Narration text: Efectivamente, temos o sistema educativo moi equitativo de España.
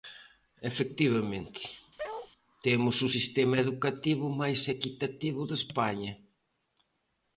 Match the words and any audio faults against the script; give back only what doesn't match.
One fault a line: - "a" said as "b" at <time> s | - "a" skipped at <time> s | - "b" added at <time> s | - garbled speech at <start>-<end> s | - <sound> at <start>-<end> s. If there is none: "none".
- bark at 2.0-2.3 s
- "moi" said as "máis" at 4.4 s